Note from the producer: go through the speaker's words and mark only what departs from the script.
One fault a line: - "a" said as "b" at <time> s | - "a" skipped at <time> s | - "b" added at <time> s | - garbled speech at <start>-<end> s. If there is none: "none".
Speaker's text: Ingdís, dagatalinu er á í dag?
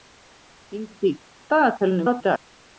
none